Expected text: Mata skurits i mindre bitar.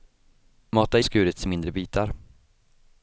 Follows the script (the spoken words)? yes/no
yes